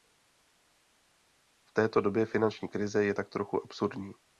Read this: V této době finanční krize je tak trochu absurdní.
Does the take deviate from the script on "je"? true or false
false